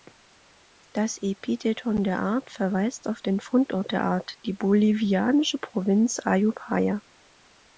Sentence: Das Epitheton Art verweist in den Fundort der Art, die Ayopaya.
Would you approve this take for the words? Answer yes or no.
no